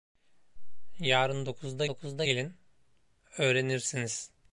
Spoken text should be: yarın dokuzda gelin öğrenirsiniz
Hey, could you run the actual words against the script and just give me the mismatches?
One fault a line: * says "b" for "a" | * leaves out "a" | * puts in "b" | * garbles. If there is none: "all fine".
* puts in "dokuzda"